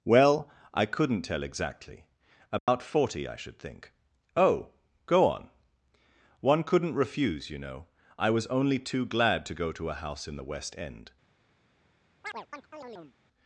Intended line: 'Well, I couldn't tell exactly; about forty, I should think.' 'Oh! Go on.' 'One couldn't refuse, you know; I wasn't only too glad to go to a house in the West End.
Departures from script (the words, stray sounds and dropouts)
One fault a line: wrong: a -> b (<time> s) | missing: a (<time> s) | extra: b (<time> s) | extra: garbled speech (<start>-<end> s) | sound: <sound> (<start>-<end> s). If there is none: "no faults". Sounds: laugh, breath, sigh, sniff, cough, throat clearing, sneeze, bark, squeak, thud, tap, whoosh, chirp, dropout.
sound: dropout (2.6-2.7 s)
wrong: wasn't -> was (8.3 s)
sound: chirp (12.2-13.2 s)